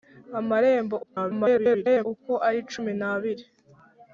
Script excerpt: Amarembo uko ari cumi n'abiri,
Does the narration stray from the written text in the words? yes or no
yes